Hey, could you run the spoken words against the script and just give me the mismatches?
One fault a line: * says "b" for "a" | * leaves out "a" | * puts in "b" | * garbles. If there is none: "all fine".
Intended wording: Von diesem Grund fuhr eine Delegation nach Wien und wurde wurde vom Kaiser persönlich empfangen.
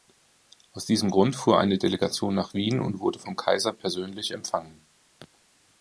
* says "Aus" for "Von"
* leaves out "wurde"